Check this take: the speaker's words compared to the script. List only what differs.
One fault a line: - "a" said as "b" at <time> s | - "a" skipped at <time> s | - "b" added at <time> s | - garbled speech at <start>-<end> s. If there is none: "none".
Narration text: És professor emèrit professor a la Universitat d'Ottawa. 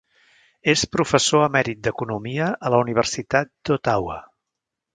- "professor" said as "d'economia" at 1.9 s